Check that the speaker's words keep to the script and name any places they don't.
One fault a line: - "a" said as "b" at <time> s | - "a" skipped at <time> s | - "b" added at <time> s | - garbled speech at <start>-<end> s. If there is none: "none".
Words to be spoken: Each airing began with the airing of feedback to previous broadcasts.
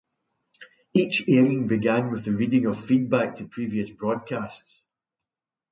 - "airing" said as "reading" at 2.3 s